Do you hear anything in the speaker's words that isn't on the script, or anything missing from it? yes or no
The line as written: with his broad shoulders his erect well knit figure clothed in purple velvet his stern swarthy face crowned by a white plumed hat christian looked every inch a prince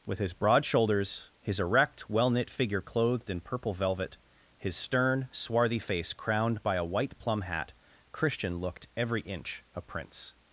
yes